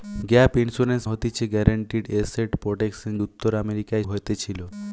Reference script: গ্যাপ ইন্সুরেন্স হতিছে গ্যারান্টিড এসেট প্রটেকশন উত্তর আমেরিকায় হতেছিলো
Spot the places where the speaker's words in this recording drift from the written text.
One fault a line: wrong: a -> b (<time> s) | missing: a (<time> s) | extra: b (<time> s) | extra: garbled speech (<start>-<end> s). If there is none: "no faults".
no faults